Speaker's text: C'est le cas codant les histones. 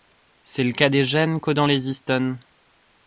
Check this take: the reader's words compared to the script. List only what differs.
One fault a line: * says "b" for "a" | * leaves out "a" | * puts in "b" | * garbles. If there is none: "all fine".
* puts in "des gènes"